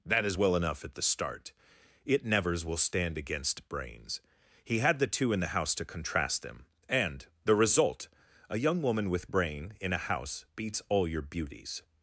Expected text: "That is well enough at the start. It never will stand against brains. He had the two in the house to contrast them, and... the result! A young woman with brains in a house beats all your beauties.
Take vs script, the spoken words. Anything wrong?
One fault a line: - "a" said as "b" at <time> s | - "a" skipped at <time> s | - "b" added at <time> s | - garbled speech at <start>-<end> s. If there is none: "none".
- "never" said as "nevers" at 2.2 s
- "brains" said as "brain" at 9.3 s